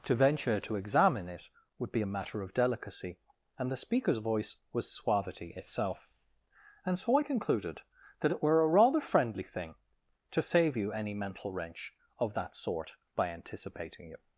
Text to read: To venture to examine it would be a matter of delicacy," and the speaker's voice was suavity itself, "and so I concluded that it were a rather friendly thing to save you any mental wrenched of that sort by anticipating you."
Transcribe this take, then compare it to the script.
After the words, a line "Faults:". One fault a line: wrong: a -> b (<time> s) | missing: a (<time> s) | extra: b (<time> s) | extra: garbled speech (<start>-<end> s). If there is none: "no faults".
To venture to examine it would be a matter of delicacy," and the speaker's voice was suavity itself, "and so I concluded that it were a rather friendly thing to save you any mental wrench of that sort by anticipating you."
Faults:
wrong: wrenched -> wrench (11.5 s)